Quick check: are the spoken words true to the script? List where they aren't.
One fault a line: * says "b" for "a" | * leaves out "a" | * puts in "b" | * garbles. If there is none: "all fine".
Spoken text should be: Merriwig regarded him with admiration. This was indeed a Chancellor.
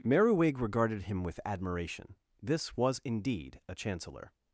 all fine